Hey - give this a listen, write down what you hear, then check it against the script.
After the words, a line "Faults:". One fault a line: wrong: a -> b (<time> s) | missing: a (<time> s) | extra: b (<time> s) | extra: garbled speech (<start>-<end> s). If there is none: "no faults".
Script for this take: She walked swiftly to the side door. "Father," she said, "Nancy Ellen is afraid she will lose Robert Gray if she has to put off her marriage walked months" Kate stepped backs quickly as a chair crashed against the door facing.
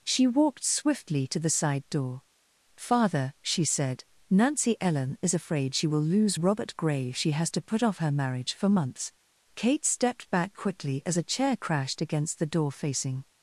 She walked swiftly to the side door. "Father," she said, "Nancy Ellen is afraid she will lose Robert Gray if she has to put off her marriage for months" Kate stepped back quickly as a chair crashed against the door facing.
Faults:
wrong: walked -> for (8.5 s)
wrong: backs -> back (10.3 s)